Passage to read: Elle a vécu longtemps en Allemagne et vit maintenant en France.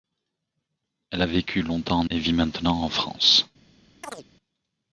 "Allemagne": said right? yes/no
no